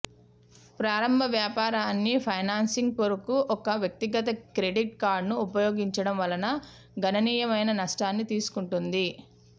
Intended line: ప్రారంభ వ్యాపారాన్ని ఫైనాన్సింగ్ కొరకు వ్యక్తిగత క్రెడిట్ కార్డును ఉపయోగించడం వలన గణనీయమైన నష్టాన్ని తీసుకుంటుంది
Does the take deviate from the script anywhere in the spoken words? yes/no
yes